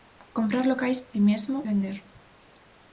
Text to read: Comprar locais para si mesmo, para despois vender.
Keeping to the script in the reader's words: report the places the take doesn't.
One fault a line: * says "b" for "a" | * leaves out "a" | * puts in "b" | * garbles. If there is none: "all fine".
* leaves out "para"
* leaves out "para despois"